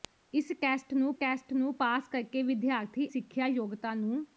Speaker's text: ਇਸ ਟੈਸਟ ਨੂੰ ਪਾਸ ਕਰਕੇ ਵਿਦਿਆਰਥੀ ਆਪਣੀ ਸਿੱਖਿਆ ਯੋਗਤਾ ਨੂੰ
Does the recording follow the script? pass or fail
fail